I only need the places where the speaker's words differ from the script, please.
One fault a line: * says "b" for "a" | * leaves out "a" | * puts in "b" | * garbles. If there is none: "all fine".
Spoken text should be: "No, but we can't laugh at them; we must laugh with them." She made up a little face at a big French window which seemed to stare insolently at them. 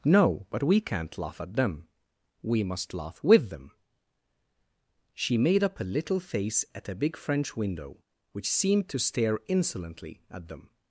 all fine